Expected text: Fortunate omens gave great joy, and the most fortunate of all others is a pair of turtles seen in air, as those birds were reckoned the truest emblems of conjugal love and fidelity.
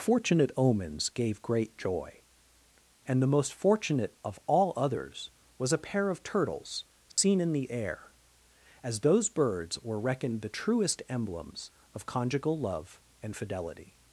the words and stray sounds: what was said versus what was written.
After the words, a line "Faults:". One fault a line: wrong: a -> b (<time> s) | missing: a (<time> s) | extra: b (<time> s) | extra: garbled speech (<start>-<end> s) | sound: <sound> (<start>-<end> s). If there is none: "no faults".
Fortunate omens gave great joy, and the most fortunate of all others was a pair of turtles seen in the air, as those birds were reckoned the truest emblems of conjugal love and fidelity.
Faults:
wrong: is -> was (5.6 s)
sound: dropout (7.1-7.2 s)
extra: the (7.5 s)